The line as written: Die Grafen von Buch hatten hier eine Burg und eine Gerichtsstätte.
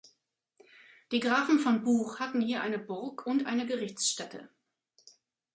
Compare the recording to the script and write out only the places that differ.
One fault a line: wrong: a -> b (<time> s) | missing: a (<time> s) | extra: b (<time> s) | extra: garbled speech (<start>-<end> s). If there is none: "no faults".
no faults